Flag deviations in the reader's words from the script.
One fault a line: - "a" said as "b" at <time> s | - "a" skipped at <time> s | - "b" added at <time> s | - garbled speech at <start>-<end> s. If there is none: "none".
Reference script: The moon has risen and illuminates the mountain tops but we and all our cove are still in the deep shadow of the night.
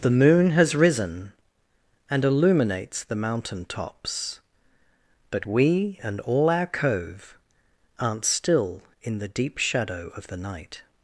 - "are" said as "aren't" at 8.0 s